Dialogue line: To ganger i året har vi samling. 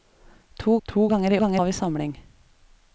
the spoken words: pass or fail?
fail